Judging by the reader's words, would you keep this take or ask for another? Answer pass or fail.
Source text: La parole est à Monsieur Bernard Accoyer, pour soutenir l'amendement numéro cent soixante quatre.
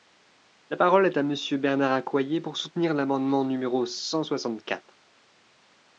pass